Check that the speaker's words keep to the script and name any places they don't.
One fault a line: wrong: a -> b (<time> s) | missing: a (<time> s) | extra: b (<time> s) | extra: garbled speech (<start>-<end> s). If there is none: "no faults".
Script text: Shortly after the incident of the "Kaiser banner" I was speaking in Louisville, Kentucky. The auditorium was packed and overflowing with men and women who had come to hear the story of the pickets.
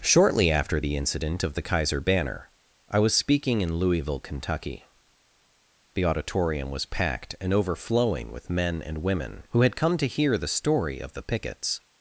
no faults